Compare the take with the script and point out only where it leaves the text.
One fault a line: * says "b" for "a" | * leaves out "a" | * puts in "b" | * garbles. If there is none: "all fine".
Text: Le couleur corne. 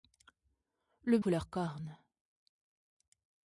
all fine